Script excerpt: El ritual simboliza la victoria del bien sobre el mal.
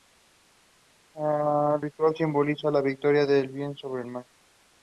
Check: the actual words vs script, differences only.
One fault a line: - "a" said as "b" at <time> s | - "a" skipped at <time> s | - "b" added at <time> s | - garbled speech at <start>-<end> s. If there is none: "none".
none